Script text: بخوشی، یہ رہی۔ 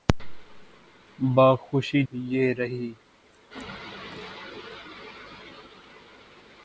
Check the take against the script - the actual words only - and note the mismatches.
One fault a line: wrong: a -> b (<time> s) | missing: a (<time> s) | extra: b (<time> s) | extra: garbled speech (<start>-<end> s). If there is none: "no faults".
no faults